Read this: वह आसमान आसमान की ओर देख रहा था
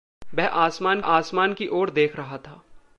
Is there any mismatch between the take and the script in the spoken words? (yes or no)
no